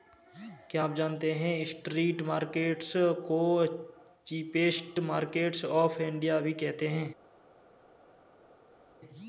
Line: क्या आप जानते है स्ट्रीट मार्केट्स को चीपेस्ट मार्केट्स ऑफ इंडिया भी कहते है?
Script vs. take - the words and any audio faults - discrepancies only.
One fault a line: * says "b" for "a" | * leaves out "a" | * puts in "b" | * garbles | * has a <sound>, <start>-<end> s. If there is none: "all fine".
all fine